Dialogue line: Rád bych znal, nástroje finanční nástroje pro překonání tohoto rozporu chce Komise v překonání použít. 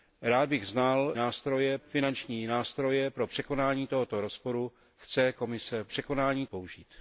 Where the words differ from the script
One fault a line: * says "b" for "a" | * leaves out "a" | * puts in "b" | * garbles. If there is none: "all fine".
all fine